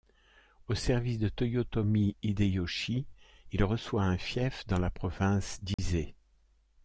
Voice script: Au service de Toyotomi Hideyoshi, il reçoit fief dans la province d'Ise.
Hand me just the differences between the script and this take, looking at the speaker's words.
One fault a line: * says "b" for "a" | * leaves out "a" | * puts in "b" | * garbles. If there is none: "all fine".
* puts in "un"